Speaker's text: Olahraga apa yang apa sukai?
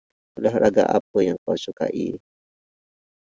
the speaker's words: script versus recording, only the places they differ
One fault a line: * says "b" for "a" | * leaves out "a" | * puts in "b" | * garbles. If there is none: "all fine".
* says "kau" for "apa"